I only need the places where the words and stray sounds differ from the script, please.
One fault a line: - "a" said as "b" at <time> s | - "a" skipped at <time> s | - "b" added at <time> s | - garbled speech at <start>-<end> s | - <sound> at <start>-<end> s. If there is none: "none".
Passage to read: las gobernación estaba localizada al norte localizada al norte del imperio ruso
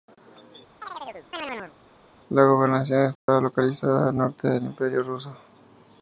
- chirp at 0.8-1.7 s
- "las" said as "la" at 2.3 s
- dropout at 3.2-3.3 s
- "localizada al norte" skipped at 4.5 s